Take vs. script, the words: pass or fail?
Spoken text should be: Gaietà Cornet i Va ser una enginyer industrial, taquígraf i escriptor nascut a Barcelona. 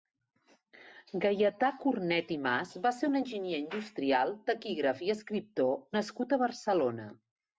fail